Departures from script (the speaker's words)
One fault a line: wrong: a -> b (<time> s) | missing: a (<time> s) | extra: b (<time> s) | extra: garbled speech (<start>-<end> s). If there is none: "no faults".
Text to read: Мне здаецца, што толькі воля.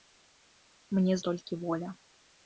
missing: здаецца што (1.2 s)